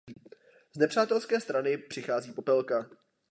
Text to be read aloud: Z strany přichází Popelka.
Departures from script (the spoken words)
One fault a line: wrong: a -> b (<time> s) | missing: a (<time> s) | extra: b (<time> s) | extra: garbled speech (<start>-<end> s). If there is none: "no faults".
extra: nepřátelské (0.8 s)